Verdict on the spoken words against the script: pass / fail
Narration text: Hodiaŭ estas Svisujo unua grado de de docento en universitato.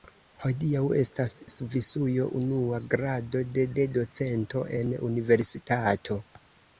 pass